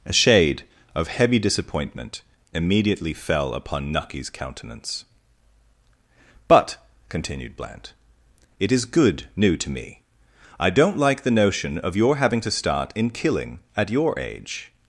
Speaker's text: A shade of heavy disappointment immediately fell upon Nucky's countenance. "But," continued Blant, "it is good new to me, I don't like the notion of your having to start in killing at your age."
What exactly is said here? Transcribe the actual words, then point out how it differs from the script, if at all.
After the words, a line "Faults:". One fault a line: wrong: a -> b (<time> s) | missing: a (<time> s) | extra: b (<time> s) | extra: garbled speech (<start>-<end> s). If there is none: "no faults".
A shade of heavy disappointment immediately fell upon Nucky's countenance. "But," continued Blant, "it is good new to me, I don't like the notion of your having to start in killing at your age."
Faults:
no faults